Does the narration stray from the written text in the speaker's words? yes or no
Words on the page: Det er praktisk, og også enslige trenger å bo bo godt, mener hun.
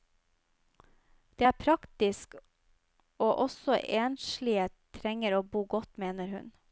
yes